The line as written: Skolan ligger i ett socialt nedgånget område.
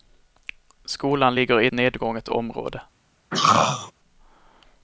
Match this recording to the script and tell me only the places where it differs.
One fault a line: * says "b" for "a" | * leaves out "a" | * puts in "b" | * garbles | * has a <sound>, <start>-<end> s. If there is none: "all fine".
* leaves out "ett socialt"
* has a throat clearing, 3.3-3.9 s